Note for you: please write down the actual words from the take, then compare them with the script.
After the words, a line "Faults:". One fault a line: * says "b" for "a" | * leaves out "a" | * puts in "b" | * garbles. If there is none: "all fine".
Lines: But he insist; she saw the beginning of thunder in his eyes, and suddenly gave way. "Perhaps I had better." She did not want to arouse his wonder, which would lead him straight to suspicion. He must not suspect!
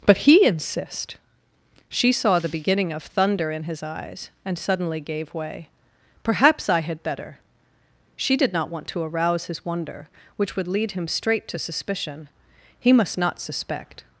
But he insist; she saw the beginning of thunder in his eyes, and suddenly gave way. "Perhaps I had better." She did not want to arouse his wonder, which would lead him straight to suspicion. He must not suspect!
Faults:
all fine